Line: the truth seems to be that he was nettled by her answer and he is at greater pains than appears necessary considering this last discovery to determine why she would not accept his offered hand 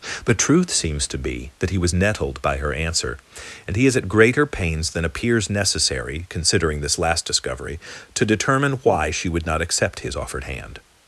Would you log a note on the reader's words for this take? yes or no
no